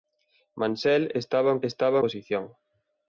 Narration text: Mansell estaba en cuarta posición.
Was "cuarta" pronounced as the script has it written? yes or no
no